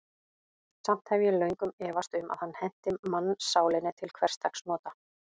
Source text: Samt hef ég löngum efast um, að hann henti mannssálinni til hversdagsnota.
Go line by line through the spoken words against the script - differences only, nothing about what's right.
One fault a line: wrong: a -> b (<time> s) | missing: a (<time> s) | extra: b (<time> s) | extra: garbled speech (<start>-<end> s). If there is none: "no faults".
no faults